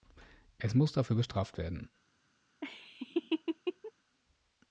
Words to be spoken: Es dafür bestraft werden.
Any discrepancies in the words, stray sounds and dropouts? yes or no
yes